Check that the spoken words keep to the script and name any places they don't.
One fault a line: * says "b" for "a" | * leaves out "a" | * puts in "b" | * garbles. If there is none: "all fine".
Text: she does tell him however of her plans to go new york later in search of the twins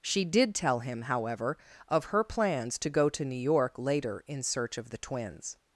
* says "did" for "does"
* puts in "to"